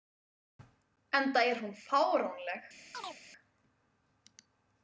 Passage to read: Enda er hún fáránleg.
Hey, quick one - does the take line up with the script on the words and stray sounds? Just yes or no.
no